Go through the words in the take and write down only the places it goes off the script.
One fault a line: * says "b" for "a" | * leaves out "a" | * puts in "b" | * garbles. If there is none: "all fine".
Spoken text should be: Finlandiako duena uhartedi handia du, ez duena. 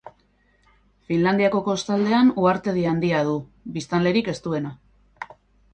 * says "kostaldean" for "duena"
* puts in "biztanlerik"